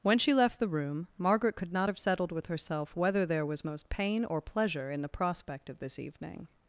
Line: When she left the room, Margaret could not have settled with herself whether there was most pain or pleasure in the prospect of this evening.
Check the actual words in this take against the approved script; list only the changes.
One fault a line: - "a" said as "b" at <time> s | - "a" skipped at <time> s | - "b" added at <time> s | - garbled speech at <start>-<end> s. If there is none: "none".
none